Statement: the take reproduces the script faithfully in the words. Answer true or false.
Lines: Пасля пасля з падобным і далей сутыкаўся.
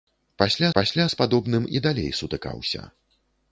true